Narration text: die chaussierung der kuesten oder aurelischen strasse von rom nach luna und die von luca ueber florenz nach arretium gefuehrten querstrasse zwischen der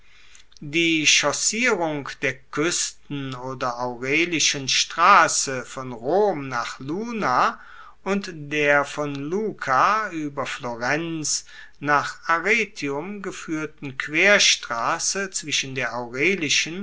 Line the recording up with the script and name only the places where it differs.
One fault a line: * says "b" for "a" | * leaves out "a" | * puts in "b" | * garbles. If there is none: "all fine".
* says "der" for "die"